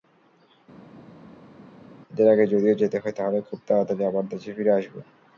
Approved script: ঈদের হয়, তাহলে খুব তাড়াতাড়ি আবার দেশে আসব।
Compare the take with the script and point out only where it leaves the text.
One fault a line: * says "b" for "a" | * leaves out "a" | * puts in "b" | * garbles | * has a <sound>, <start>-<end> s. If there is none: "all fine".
* puts in "আগে যদিও যেতে"
* puts in "ফিরে"